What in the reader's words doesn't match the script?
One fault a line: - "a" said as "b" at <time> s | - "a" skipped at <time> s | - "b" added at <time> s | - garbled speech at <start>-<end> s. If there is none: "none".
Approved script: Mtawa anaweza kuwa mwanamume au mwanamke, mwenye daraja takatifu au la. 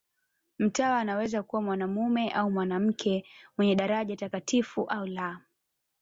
none